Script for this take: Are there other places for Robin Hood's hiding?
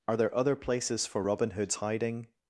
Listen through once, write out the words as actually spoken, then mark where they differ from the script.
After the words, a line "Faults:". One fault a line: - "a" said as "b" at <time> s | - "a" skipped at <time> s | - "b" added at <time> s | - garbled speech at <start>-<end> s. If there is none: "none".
Are there other places for Robin Hood's hiding?
Faults:
none